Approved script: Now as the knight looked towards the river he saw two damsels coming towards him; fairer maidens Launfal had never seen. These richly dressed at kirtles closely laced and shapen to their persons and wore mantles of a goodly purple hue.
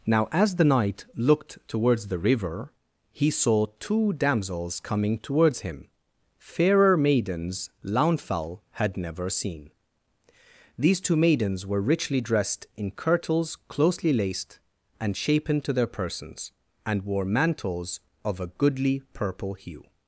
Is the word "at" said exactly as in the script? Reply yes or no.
no